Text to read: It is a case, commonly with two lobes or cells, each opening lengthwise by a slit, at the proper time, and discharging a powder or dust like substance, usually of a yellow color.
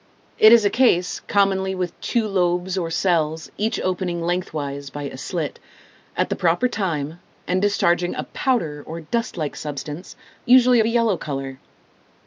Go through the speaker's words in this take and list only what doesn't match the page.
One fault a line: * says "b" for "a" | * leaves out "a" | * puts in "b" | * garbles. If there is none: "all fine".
all fine